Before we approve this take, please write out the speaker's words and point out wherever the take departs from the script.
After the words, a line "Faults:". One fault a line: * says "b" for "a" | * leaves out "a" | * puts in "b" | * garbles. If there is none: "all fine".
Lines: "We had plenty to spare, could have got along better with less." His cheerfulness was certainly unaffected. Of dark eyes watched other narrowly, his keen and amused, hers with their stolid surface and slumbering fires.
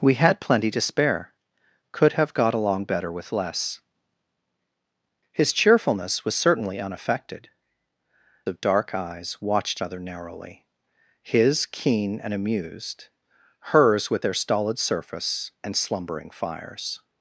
"We had plenty to spare, could have got along better with less." His cheerfulness was certainly unaffected. Of dark eyes watched other narrowly, his keen and amused, hers with their stolid surface and slumbering fires.
Faults:
all fine